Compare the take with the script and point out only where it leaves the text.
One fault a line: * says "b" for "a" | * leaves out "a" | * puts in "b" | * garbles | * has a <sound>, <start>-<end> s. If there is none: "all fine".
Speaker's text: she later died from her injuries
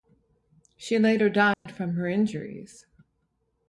* has a dropout, 1.5-1.7 s